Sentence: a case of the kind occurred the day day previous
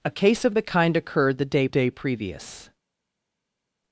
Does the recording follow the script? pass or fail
pass